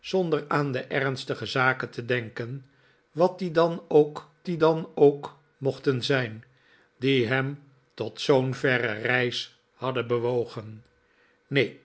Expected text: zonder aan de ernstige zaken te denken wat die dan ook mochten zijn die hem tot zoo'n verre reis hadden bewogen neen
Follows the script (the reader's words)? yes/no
no